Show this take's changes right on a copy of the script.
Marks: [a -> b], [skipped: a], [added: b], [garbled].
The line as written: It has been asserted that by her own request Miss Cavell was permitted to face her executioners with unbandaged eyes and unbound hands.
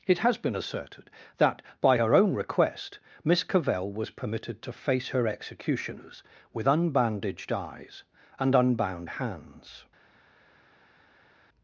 It has been asserted that by her own request Miss Cavell was permitted to face her executioners with unbandaged eyes and unbound hands.